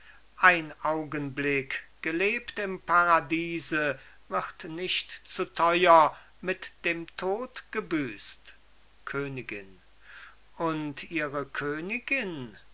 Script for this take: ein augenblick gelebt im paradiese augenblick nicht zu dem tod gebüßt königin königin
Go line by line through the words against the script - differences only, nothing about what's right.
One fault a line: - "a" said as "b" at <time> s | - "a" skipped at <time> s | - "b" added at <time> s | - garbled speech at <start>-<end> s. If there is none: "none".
- "augenblick" said as "wird" at 4.3 s
- "teuer mit" added at 5.5 s
- "und ihre" added at 10.5 s